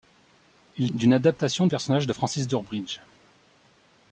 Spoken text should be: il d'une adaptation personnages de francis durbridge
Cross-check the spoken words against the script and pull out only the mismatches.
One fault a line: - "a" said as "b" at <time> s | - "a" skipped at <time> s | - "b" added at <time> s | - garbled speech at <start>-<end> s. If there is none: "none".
none